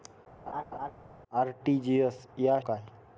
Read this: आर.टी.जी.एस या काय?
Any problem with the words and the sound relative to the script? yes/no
yes